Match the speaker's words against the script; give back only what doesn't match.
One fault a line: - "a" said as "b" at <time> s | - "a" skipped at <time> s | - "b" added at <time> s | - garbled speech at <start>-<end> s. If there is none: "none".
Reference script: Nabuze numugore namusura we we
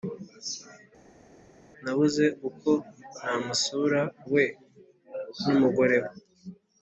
- "numugore" said as "uko" at 2.5 s
- "numugore" added at 5.4 s